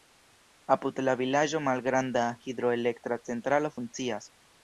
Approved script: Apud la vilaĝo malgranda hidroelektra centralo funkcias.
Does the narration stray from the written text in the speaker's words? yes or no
no